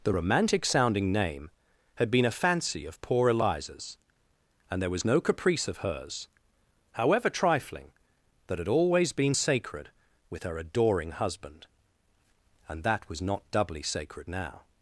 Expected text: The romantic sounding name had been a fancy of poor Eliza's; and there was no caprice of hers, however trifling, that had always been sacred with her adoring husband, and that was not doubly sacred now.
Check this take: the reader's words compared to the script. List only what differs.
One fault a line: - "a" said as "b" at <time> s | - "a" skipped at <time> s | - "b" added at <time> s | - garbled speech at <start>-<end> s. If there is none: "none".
none